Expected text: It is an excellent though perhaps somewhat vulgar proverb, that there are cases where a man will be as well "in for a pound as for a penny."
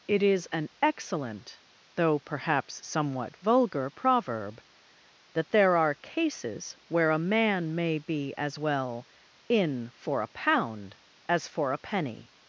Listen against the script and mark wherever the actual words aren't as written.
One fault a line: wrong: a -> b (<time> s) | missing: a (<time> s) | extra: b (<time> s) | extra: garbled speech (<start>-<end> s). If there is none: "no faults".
wrong: will -> may (7.8 s)